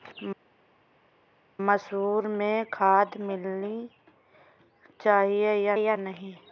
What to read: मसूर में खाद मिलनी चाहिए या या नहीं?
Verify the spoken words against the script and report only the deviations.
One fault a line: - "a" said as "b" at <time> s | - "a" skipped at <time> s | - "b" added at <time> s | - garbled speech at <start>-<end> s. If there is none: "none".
none